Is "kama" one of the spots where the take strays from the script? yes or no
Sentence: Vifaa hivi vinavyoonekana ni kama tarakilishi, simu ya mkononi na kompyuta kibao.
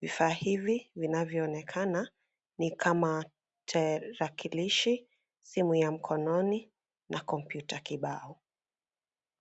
no